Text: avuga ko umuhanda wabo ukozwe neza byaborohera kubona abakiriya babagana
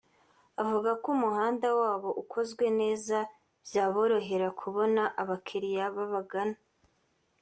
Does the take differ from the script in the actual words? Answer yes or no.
no